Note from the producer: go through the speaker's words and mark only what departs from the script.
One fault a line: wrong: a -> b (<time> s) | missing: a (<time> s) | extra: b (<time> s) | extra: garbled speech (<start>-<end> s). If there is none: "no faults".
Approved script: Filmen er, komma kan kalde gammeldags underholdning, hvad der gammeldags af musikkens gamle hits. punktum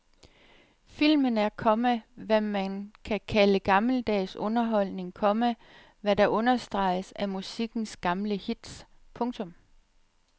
extra: hvad man (2.1 s)
extra: komma (5.1 s)
wrong: gammeldags -> understreges (6.3 s)